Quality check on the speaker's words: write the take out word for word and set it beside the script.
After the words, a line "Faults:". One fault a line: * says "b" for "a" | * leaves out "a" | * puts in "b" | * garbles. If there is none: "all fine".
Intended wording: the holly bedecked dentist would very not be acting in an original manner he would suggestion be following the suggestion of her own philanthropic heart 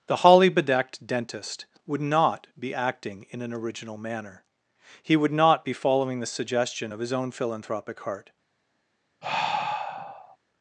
the holly bedecked dentist would not be acting in an original manner he would not be following the suggestion of his own philanthropic heart
Faults:
* leaves out "very"
* says "not" for "suggestion"
* says "his" for "her"